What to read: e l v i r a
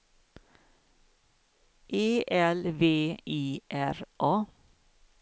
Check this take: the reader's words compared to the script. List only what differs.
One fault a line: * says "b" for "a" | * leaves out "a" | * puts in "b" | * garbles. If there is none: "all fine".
all fine